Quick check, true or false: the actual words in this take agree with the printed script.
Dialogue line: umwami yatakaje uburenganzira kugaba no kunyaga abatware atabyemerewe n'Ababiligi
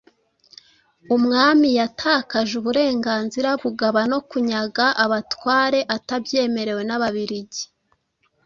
true